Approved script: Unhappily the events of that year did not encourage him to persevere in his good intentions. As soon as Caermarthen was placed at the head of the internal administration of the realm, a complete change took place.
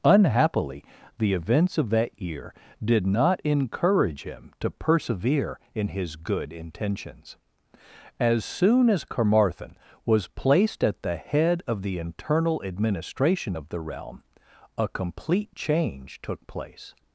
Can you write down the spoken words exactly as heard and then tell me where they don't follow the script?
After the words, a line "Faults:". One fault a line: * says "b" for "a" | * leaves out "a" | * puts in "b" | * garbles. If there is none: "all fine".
Unhappily the events of that year did not encourage him to persevere in his good intentions. As soon as Caermarthen was placed at the head of the internal administration of the realm, a complete change took place.
Faults:
all fine